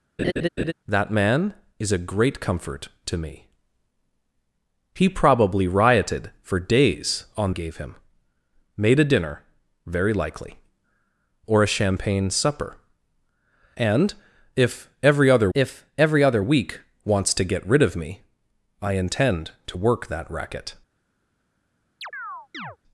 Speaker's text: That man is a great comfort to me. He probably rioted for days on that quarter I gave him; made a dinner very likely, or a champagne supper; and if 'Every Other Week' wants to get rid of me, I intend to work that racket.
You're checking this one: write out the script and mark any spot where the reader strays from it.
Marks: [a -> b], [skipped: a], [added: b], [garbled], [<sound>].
[laugh] That man is a great comfort to me. He probably rioted for days on [skipped: that quarter I] gave him; made a dinner very likely, or a champagne supper; and if 'Every Other [added: if Every Other] Week' wants to get rid of me, I intend to work that racket. [chirp]